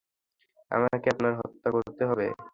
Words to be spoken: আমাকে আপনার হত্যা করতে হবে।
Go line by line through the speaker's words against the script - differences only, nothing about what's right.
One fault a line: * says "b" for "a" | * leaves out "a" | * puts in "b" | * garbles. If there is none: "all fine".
all fine